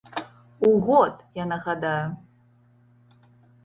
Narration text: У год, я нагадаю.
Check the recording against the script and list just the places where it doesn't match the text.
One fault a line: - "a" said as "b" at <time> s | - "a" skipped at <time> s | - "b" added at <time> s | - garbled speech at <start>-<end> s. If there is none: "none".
none